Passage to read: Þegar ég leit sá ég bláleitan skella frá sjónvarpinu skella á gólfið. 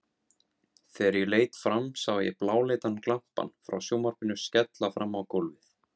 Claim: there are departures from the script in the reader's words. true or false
true